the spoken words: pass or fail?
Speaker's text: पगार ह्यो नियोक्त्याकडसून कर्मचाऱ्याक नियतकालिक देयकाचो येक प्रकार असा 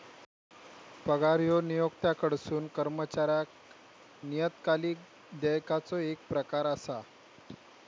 pass